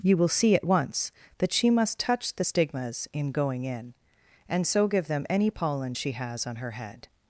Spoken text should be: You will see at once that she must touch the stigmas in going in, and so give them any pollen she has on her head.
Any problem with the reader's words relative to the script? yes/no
no